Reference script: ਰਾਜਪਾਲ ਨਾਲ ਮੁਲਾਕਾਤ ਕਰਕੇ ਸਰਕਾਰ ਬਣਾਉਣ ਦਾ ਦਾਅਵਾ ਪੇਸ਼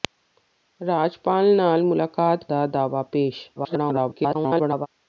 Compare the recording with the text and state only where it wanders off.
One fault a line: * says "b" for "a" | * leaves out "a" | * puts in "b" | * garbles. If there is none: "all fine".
* leaves out "ਕਰਕੇ ਸਰਕਾਰ ਬਣਾਉਣ"
* garbles